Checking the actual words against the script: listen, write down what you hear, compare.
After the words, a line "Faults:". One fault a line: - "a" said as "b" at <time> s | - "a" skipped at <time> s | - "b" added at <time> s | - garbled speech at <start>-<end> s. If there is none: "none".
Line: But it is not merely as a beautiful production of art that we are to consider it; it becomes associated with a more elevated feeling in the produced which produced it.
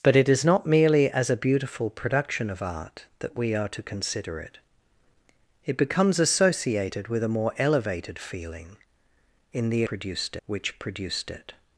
But it is not merely as a beautiful production of art that we are to consider it; it becomes associated with a more elevated feeling in the produced which produced it.
Faults:
none